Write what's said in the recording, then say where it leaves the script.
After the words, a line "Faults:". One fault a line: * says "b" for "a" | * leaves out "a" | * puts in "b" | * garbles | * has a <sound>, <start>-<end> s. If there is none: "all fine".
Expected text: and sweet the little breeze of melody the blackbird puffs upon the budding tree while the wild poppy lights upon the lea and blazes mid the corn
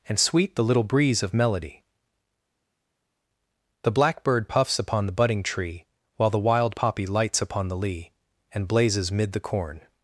and sweet the little breeze of melody the blackbird puffs upon the budding tree while the wild poppy lights upon the lea and blazes mid the corn
Faults:
all fine